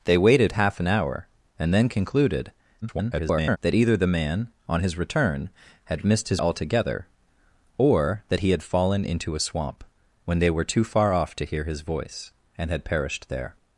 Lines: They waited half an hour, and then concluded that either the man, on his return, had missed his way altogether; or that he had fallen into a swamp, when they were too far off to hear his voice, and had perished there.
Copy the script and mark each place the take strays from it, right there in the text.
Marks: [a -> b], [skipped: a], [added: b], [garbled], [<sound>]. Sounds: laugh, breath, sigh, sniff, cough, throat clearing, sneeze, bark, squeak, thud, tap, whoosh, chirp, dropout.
They waited half an hour, and then concluded [garbled] that either the man, on his return, had missed his [skipped: way] altogether; or that he had fallen into a swamp, when they were too far off to hear his voice, and had perished there.